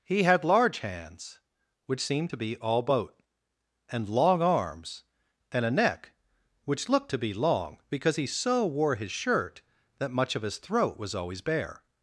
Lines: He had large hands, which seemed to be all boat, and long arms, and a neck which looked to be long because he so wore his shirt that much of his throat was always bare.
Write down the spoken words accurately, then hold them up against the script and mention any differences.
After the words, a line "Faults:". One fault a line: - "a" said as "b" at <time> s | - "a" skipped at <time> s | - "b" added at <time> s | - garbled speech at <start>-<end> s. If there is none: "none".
He had large hands, which seemed to be all boat, and long arms, and a neck which looked to be long because he so wore his shirt that much of his throat was always bare.
Faults:
none